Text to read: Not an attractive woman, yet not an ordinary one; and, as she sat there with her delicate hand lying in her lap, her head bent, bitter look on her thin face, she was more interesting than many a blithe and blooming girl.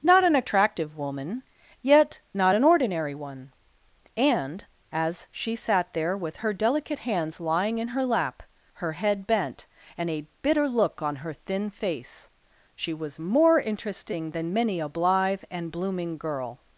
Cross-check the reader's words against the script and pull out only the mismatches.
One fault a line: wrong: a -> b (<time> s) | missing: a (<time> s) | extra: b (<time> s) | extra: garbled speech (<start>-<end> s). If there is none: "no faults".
wrong: hand -> hands (7.0 s)
extra: and a (10.0 s)